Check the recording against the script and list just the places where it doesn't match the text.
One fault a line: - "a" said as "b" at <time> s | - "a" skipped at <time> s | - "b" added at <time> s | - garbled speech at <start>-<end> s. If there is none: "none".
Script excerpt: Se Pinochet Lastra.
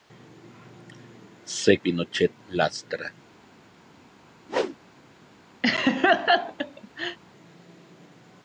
none